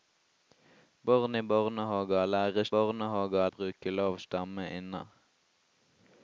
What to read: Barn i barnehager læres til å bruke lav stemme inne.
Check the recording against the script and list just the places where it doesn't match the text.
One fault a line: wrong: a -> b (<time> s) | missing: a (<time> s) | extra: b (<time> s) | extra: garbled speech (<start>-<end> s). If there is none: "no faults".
wrong: til -> barnehager (2.7 s)